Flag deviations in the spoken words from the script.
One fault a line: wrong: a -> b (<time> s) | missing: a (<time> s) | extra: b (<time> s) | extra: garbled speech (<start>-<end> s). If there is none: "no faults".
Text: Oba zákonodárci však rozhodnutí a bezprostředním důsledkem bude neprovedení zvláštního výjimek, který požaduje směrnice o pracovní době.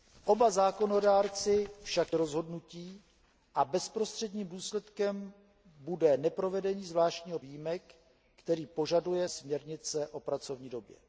no faults